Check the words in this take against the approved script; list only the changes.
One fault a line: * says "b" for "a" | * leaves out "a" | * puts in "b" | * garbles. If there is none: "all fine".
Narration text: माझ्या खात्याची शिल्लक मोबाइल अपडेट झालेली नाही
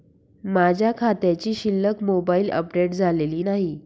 all fine